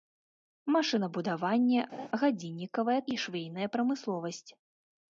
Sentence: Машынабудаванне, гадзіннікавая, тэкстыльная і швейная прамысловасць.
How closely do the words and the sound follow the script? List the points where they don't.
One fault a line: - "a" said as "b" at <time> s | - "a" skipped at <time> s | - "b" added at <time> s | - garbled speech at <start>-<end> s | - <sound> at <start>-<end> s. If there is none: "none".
- laugh at 1.9-2.1 s
- "тэкстыльная" skipped at 3.0 s